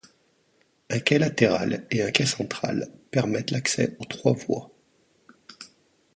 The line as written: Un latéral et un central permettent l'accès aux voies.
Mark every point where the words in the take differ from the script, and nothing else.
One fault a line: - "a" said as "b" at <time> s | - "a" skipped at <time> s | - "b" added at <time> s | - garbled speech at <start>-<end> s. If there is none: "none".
- "quai" added at 1.0 s
- "quai" added at 2.1 s
- "trois" added at 4.0 s